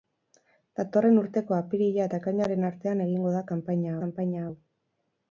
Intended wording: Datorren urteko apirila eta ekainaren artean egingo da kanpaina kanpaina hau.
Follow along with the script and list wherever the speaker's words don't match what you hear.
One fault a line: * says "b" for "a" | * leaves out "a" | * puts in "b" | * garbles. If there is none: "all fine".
all fine